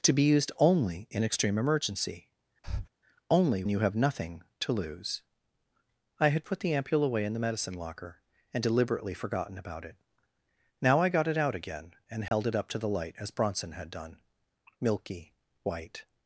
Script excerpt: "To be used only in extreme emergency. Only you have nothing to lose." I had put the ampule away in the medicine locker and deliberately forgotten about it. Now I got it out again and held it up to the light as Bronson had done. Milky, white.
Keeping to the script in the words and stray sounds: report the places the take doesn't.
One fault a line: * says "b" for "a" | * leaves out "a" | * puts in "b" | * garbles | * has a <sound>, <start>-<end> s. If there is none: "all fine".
* has a breath, 2.6-2.9 s
* has a dropout, 12.3-12.3 s